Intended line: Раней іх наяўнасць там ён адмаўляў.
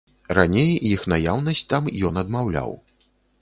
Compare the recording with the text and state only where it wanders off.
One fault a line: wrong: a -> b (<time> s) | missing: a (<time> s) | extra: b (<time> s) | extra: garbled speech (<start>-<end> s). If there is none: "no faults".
no faults